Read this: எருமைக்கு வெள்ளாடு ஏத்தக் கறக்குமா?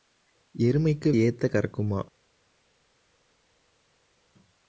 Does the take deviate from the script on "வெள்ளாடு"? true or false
true